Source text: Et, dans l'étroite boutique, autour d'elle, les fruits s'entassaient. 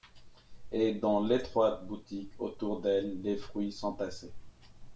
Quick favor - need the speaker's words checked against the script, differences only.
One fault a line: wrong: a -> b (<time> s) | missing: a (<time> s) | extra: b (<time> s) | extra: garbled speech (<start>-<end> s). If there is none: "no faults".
no faults